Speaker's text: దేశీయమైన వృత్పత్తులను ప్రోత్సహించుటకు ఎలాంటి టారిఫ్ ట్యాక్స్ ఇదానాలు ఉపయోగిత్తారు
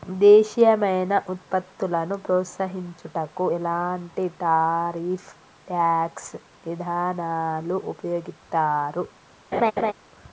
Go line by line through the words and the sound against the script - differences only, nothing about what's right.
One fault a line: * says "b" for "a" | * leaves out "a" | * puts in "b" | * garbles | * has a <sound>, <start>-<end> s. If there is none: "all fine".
* has a laugh, 9.5-9.9 s